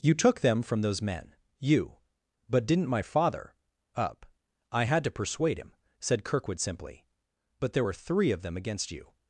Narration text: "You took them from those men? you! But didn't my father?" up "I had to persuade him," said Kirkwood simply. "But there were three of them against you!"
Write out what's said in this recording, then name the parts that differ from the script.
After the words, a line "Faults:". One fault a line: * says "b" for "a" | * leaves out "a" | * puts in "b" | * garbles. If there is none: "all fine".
"You took them from those men? you! But didn't my father?" up "I had to persuade him," said Kirkwood simply. "But there were three of them against you!"
Faults:
all fine